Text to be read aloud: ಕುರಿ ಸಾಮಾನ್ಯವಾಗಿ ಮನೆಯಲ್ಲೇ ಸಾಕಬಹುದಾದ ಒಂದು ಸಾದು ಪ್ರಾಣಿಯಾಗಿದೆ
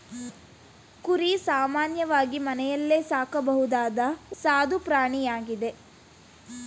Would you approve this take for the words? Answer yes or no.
no